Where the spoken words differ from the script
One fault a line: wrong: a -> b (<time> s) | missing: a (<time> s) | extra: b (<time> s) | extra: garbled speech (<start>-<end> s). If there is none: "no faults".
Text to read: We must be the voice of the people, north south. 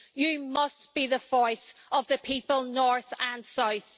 wrong: We -> You (0.1 s)
extra: and (3.2 s)